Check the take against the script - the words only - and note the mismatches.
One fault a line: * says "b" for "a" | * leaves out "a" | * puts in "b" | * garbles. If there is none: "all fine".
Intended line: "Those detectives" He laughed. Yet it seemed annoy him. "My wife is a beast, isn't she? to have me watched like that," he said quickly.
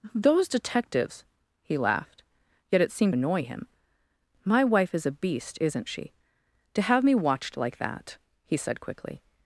all fine